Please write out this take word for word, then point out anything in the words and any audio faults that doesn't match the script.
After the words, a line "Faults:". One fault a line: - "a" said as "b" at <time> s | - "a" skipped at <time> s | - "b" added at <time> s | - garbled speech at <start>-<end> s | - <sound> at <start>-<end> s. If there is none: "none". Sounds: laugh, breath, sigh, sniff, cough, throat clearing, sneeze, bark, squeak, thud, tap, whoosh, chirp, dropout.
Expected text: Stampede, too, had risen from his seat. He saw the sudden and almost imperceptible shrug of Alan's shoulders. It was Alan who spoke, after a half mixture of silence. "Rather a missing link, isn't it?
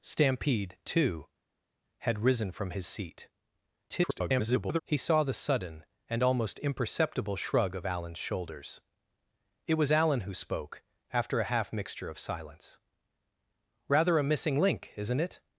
Stampede, too, had risen from his seat. [garbled] He saw the sudden and almost imperceptible shrug of Alan's shoulders. It was Alan who spoke, after a half mixture of silence. "Rather a missing link, isn't it?
Faults:
- garbled speech at 3.9-4.8 s